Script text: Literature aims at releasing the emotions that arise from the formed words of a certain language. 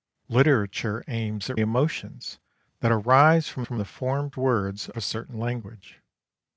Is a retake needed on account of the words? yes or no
yes